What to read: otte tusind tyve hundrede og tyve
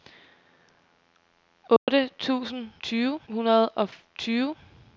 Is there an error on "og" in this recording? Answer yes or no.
no